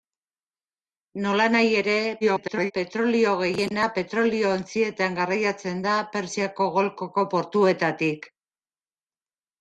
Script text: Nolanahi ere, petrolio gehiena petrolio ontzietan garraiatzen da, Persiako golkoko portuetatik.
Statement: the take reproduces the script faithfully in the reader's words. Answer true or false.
false